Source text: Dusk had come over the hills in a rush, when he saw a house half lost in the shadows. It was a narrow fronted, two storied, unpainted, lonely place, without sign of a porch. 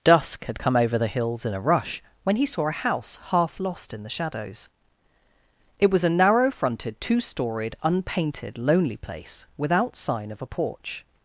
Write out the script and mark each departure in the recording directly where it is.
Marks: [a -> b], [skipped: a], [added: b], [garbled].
Dusk had come over the hills in a rush, when he saw a house half lost in the shadows. It was a narrow fronted, two storied, unpainted, lonely place, without sign of a porch.